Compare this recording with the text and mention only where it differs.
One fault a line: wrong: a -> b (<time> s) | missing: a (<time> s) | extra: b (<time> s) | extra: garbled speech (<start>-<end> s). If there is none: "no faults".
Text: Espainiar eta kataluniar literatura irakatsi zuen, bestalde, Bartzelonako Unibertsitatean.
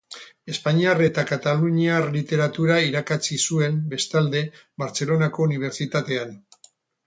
no faults